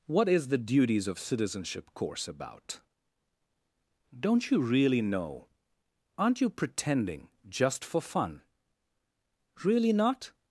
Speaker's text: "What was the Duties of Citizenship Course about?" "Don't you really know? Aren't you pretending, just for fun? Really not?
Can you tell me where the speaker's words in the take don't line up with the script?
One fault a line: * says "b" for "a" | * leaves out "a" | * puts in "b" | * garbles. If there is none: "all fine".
* says "is" for "was"